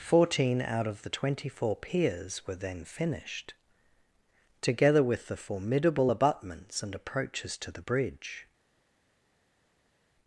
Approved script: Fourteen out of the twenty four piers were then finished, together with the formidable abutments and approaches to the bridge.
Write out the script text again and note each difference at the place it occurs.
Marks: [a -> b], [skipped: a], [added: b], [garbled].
Fourteen out of the twenty four piers were then finished, together with the formidable abutments and approaches to the bridge.